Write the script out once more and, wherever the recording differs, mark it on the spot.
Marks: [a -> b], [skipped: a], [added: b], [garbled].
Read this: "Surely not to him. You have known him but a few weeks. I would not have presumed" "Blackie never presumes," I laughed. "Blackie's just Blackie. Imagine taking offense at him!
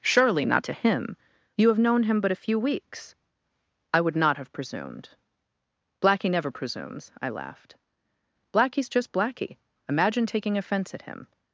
"Surely not to him. You have known him but a few weeks. I would not have presumed" "Blackie never presumes," I laughed. "Blackie's just Blackie. Imagine taking offense at him!